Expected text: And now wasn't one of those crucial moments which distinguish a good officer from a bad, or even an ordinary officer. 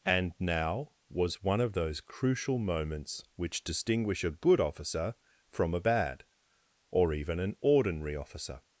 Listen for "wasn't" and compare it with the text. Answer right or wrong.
wrong